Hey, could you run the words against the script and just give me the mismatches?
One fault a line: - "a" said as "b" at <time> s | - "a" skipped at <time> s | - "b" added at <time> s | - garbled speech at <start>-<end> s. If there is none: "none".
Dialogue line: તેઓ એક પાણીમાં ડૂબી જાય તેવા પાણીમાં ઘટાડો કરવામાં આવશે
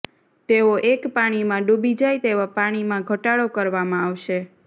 none